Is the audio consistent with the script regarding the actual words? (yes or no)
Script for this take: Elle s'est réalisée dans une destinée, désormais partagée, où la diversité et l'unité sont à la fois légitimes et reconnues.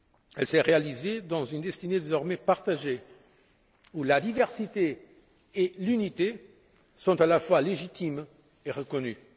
yes